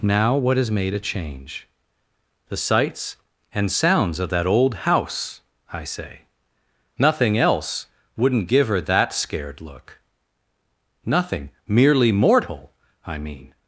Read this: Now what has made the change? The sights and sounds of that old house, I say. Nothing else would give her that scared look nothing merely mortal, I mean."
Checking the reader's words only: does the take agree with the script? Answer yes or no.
no